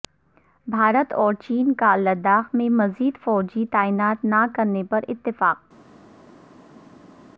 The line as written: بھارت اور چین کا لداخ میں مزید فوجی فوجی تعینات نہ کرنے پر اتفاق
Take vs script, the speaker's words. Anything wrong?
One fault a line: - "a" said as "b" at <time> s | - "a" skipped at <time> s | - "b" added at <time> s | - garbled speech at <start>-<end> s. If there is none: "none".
- "فوجی" skipped at 3.6 s